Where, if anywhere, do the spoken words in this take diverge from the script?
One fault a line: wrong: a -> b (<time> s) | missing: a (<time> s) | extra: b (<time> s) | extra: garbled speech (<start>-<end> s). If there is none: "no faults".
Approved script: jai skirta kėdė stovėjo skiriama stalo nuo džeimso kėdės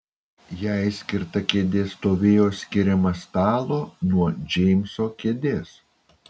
no faults